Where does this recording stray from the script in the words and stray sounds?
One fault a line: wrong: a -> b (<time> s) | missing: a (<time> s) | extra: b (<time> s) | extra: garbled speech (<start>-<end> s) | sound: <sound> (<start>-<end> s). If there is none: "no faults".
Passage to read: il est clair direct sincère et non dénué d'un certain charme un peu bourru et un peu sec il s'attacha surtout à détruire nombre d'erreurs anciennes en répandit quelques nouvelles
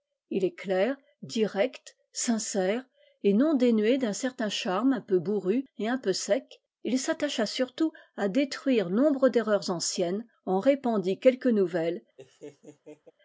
sound: laugh (12.2-13.1 s)